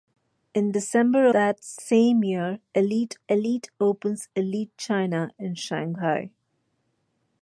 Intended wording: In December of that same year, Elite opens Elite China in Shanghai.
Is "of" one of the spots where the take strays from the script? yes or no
yes